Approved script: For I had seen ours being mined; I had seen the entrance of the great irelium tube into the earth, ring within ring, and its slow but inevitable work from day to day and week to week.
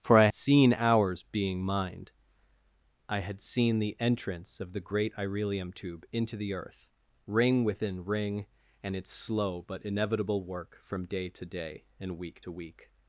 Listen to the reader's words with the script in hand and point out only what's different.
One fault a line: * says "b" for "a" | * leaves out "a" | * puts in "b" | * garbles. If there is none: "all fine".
* leaves out "had"